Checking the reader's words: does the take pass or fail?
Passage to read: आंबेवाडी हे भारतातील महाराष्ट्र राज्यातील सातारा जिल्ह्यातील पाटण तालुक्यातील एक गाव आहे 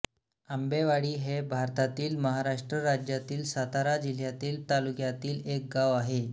fail